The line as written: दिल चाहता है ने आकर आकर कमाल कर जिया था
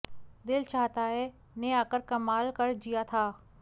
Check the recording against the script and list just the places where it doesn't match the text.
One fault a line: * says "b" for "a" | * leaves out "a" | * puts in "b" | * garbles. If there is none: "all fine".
* leaves out "आकर"